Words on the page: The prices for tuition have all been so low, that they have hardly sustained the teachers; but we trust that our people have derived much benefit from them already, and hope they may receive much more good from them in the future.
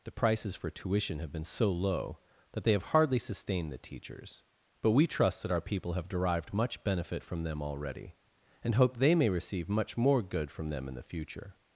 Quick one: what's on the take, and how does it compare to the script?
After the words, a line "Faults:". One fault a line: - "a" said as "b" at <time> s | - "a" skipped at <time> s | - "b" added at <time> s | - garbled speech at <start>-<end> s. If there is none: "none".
The prices for tuition have been so low, that they have hardly sustained the teachers; but we trust that our people have derived much benefit from them already, and hope they may receive much more good from them in the future.
Faults:
- "all" skipped at 1.3 s